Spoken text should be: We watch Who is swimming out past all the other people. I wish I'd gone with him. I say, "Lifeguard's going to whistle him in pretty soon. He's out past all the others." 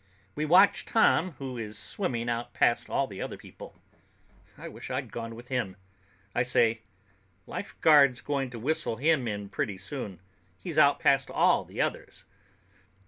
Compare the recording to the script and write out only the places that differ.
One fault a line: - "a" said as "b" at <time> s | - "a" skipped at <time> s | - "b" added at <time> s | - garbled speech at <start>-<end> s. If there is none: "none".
- "Tom" added at 0.8 s